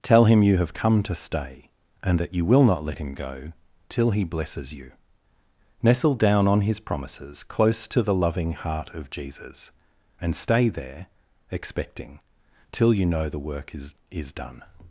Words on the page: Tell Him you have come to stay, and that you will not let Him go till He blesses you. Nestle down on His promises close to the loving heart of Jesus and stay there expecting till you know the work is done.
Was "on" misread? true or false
false